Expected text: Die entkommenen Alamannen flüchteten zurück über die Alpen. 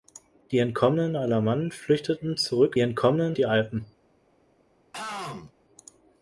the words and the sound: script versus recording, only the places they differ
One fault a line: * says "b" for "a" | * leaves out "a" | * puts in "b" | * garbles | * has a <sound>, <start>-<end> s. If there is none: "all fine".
* says "entkommenen" for "über"
* has a throat clearing, 4.9-5.5 s